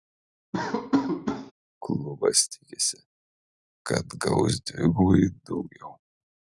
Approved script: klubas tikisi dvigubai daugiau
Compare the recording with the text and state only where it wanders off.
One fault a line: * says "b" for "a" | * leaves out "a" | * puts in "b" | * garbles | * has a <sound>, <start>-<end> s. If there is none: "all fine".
* has a laugh, 0.5-1.5 s
* puts in "kad gaus"